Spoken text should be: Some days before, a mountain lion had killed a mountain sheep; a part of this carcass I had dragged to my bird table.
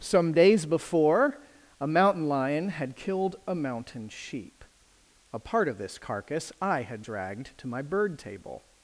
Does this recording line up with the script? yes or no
yes